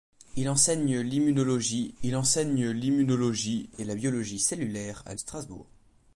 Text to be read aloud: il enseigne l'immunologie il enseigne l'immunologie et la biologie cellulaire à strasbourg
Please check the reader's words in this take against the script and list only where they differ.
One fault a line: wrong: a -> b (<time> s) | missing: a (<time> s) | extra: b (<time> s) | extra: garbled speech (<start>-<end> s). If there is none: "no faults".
no faults